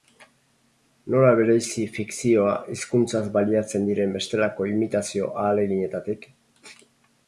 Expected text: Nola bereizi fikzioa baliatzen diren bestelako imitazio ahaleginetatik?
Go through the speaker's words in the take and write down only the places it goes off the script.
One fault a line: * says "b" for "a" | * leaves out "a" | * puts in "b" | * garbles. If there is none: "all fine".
* puts in "hizkuntzaz"